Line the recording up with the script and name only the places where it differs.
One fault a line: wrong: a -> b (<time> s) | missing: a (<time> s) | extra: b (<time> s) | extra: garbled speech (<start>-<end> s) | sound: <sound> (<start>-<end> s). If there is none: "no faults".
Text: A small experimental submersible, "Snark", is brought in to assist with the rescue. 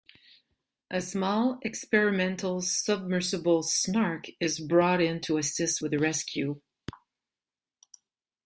no faults